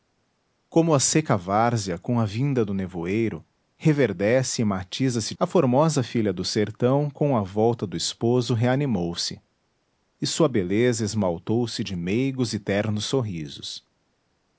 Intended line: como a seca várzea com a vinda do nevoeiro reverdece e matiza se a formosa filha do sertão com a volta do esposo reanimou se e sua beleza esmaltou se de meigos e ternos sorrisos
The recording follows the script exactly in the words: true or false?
true